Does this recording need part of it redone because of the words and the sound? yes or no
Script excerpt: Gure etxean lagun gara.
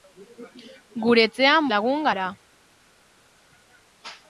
no